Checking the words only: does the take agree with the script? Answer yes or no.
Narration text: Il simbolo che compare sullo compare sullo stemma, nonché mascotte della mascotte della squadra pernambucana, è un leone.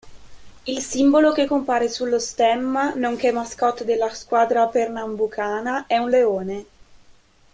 no